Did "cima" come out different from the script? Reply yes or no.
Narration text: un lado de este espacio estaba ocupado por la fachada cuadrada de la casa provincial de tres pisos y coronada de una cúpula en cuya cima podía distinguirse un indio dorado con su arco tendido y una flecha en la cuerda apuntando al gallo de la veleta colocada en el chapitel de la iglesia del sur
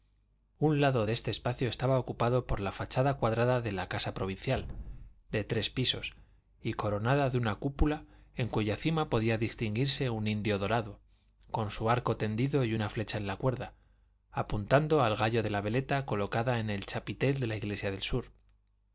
no